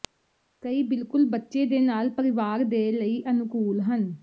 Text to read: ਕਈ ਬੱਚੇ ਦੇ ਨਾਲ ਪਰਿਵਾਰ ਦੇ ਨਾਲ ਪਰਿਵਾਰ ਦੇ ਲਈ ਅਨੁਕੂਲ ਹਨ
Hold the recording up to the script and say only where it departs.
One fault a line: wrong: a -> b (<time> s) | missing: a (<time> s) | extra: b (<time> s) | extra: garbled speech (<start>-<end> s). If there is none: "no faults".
extra: ਬਿਲਕੁਲ (0.8 s)
missing: ਨਾਲ ਪਰਿਵਾਰ ਦੇ (2.9 s)